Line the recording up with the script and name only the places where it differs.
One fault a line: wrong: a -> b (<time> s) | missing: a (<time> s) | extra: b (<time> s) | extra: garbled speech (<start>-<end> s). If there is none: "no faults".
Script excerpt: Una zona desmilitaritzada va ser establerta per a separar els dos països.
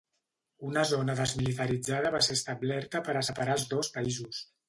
no faults